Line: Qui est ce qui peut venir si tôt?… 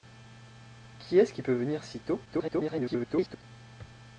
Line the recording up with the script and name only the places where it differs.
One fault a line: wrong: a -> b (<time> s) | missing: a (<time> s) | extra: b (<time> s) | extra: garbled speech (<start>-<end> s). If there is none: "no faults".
extra: garbled speech (2.2-3.4 s)